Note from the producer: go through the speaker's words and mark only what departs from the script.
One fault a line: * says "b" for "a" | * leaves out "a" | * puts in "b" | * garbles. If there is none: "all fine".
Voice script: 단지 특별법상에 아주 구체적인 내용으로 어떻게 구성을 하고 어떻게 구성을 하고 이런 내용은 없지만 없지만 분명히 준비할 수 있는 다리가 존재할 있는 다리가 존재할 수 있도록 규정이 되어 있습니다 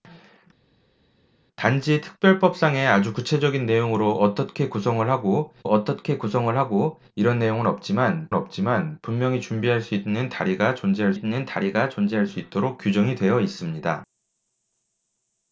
all fine